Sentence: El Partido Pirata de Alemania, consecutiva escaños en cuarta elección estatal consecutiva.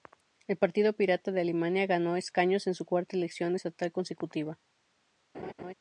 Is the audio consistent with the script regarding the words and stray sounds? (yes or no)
no